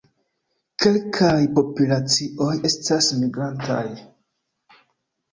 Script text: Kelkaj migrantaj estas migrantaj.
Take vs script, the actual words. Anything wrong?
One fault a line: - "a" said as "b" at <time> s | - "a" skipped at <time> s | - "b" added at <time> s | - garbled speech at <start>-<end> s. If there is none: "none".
- "migrantaj" said as "populacioj" at 1.6 s